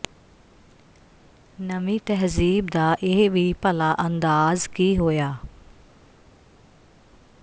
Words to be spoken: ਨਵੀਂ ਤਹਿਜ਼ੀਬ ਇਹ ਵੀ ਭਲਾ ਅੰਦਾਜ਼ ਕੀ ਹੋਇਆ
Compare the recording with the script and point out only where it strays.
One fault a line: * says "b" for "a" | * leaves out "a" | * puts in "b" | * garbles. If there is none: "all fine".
* puts in "ਦਾ"